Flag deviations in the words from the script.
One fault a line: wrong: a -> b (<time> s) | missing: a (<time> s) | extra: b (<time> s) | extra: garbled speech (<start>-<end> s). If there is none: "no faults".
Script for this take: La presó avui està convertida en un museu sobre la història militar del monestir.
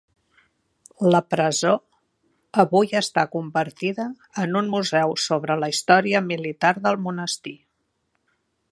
no faults